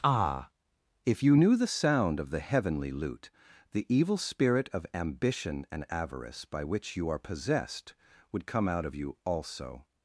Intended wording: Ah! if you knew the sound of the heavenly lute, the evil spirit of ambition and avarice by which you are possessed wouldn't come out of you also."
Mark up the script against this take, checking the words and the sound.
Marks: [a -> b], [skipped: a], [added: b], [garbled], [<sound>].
Ah! if you knew the sound of the heavenly lute, the evil spirit of ambition and avarice by which you are possessed [wouldn't -> would] come out of you also."